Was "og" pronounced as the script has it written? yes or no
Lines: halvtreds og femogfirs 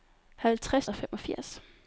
yes